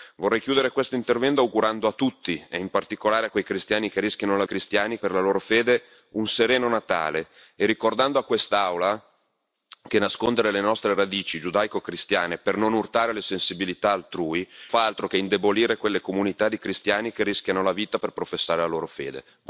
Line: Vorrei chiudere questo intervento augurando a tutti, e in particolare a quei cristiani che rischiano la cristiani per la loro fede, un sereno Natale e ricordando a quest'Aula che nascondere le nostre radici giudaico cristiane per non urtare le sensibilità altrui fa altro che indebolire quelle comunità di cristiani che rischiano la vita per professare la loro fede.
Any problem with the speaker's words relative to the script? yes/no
no